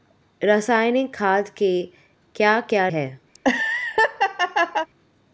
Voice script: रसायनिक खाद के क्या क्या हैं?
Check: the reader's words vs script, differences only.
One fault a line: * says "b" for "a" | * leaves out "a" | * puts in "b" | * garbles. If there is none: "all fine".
all fine